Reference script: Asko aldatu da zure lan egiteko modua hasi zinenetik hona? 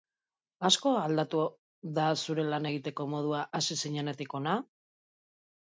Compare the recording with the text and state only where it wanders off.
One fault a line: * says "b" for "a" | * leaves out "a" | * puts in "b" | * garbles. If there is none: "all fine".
all fine